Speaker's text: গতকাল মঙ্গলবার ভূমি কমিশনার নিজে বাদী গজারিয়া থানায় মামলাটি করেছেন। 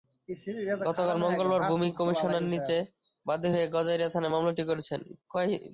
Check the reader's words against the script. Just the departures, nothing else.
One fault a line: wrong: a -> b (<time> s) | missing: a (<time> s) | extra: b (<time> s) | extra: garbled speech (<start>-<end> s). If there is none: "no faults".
extra: হয়ে (3.5 s)